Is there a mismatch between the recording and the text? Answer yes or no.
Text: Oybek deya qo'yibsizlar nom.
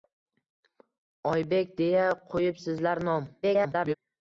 yes